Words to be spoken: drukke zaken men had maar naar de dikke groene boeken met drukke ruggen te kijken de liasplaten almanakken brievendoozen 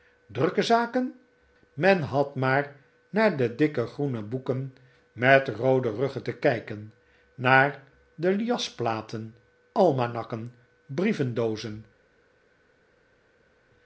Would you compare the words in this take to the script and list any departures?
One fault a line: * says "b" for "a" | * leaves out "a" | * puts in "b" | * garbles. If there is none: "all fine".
* says "roode" for "drukke"
* puts in "naar"